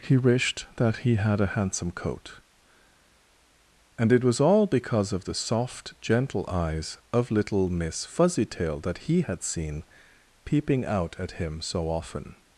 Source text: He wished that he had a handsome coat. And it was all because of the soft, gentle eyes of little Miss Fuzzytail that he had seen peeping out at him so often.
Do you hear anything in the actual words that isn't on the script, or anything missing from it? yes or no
no